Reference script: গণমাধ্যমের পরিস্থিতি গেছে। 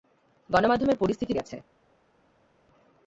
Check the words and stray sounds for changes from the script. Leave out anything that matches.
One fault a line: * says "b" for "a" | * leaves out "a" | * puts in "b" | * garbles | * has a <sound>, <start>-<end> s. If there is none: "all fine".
all fine